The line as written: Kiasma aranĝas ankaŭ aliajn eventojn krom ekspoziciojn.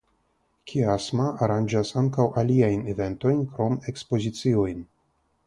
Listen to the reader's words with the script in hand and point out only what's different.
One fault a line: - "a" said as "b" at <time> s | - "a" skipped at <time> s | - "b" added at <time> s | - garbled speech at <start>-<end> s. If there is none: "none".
none